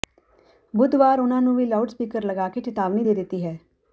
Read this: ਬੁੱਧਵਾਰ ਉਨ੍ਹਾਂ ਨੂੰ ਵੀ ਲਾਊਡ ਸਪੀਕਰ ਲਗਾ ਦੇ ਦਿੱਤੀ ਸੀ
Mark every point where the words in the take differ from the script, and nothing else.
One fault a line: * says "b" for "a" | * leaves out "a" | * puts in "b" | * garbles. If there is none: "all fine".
* puts in "ਕੇ ਚਿਤਾਵਨੀ"
* says "ਹੈ" for "ਸੀ"